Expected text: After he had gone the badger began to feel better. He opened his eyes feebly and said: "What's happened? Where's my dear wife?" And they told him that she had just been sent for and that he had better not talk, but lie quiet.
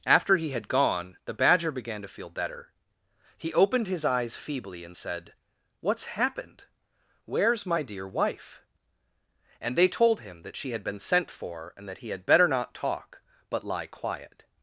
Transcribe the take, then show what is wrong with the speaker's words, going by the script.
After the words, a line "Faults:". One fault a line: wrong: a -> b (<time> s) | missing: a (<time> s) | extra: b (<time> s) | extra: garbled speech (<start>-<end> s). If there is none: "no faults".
After he had gone the badger began to feel better. He opened his eyes feebly and said: "What's happened? Where's my dear wife?" And they told him that she had been sent for and that he had better not talk, but lie quiet.
Faults:
missing: just (10.8 s)